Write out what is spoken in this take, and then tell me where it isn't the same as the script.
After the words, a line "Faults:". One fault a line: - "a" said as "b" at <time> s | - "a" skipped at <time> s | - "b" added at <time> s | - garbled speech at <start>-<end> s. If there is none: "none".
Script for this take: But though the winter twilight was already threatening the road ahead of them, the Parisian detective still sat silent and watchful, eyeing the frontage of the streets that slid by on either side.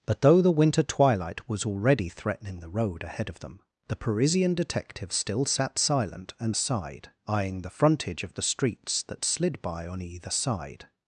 But though the winter twilight was already threatening the road ahead of them, the Parisian detective still sat silent and side, eyeing the frontage of the streets that slid by on either side.
Faults:
- "watchful" said as "side" at 6.5 s